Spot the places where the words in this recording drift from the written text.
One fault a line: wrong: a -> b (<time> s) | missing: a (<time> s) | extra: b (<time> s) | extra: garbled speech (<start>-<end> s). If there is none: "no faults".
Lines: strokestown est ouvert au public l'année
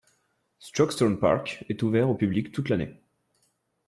extra: park (1.2 s)
extra: toute (2.5 s)